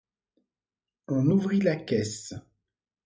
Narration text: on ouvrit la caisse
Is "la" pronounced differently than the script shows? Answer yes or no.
no